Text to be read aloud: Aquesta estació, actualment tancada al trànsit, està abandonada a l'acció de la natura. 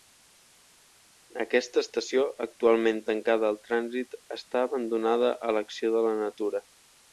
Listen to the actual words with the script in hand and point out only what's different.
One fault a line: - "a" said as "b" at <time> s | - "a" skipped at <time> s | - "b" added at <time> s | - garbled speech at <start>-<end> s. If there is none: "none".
none